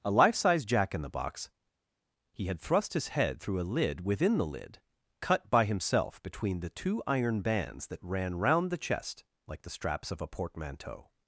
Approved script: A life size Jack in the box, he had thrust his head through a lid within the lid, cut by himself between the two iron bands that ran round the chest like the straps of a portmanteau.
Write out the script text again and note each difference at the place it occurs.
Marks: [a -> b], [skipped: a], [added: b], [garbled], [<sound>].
A life size Jack in the box, he had thrust his head through a lid within the lid, cut by himself between the two iron bands that ran round the chest like the straps of a portmanteau.